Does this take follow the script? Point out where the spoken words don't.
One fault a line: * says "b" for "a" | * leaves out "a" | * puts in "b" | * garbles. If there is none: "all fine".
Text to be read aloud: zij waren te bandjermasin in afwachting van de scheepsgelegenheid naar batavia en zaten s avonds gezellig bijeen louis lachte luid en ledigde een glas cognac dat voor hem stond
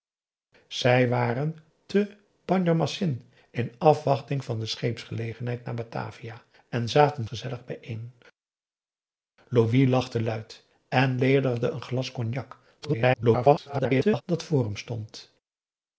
* leaves out "s avonds"
* garbles